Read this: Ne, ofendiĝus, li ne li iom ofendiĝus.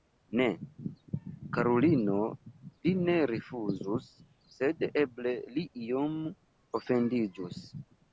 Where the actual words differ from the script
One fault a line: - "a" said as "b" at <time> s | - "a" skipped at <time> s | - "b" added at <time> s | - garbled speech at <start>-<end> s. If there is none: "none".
- "ofendiĝus" said as "karulino" at 1.6 s
- "rifuzus sed eble" added at 3.3 s